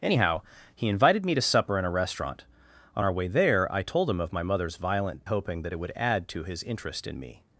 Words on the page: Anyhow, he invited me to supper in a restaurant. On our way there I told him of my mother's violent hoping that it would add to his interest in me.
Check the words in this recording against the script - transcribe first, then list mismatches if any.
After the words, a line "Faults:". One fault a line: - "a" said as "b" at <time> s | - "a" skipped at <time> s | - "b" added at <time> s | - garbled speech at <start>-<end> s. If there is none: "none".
Anyhow, he invited me to supper in a restaurant. On our way there I told him of my mother's violent hoping that it would add to his interest in me.
Faults:
none